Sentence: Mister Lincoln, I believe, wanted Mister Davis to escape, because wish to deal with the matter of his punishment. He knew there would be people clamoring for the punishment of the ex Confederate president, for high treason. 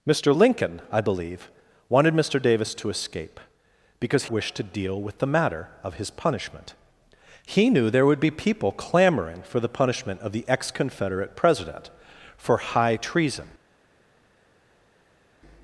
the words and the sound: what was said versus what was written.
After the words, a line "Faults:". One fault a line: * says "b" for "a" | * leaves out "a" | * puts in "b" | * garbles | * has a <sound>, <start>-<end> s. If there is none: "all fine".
Mister Lincoln, I believe, wanted Mister Davis to escape, because wish to deal with the matter of his punishment. He knew there would be people clamoring for the punishment of the ex Confederate president, for high treason.
Faults:
all fine